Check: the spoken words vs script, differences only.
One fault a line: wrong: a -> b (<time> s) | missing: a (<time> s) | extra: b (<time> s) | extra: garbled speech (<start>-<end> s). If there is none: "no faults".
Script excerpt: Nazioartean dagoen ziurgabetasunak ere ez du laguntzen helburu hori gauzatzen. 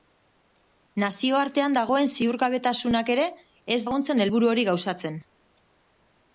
missing: du (3.8 s)